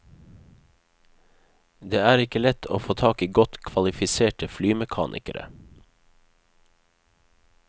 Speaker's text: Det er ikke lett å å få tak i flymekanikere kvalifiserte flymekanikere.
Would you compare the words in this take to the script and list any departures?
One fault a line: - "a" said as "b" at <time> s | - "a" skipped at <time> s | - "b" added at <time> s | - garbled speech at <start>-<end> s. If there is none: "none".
- "å" skipped at 2.8 s
- "flymekanikere" said as "godt" at 3.4 s